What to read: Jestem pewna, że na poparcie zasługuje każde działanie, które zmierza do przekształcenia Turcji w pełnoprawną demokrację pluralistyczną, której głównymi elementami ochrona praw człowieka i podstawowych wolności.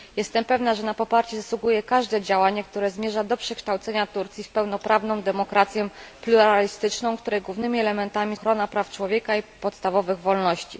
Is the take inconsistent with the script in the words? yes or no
no